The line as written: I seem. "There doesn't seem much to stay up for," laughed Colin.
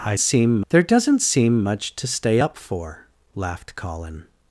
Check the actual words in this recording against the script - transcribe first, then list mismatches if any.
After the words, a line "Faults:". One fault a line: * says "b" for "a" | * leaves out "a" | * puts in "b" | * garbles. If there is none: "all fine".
I seem. "There doesn't seem much to stay up for," laughed Colin.
Faults:
all fine